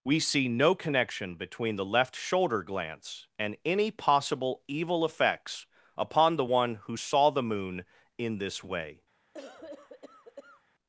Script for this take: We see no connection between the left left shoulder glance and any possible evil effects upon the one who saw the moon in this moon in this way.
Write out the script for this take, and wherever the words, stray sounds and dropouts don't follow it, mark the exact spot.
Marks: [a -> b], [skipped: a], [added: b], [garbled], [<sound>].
We see no connection between the left [skipped: left] shoulder glance and any possible evil effects upon the one who saw the moon in this [skipped: moon in this] way. [cough]